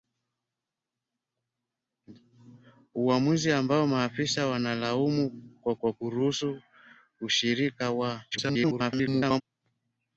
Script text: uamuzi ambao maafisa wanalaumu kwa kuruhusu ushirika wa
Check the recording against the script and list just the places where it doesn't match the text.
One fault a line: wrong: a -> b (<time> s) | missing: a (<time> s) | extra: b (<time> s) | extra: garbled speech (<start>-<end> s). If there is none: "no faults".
extra: kwa (5.8 s)
extra: garbled speech (8.3-9.4 s)